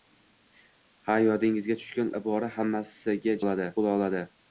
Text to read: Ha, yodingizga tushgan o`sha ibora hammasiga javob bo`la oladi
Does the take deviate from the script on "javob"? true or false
true